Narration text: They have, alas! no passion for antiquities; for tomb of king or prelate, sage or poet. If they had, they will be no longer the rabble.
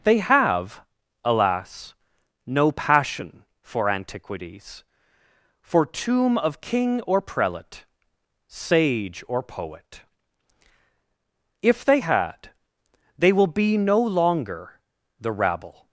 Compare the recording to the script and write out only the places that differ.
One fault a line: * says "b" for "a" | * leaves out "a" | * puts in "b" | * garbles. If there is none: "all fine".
all fine